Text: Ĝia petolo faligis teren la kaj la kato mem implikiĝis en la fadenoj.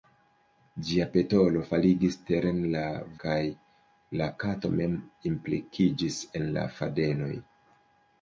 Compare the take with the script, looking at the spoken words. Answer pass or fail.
pass